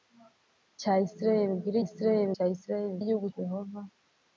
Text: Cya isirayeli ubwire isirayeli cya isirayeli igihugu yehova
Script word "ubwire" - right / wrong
right